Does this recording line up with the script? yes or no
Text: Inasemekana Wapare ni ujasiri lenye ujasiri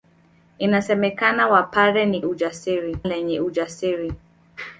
yes